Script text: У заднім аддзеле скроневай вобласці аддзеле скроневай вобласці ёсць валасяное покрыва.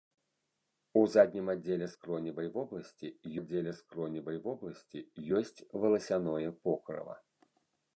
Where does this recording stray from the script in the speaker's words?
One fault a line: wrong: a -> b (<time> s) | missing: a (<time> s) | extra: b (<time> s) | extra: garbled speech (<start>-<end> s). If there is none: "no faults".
no faults